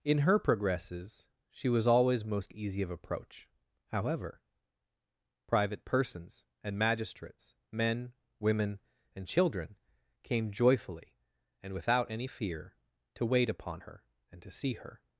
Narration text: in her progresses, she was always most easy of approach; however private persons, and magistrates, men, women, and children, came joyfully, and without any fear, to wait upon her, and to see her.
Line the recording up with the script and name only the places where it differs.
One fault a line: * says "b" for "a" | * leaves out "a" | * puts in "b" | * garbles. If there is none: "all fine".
all fine